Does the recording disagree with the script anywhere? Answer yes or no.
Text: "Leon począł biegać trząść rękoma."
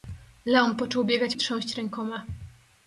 no